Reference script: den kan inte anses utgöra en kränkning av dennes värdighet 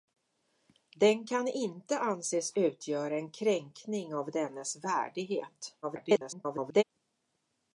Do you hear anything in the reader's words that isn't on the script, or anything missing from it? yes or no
yes